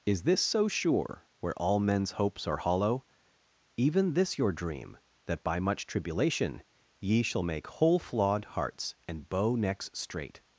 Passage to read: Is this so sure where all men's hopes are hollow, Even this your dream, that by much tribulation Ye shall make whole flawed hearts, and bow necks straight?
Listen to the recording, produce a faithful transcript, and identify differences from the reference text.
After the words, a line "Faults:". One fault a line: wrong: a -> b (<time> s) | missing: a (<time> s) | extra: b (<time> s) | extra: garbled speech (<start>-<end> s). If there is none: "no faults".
Is this so sure where all men's hopes are hollow, Even this your dream, that by much tribulation Ye shall make whole flawed hearts, and bow necks straight?
Faults:
no faults